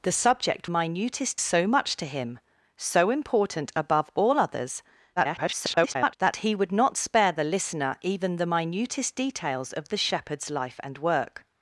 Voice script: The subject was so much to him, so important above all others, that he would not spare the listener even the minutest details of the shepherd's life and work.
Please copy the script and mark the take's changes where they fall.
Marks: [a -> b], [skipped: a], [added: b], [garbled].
The subject [was -> minutest] so much to him, so important above all others, [garbled] that he would not spare the listener even the minutest details of the shepherd's life and work.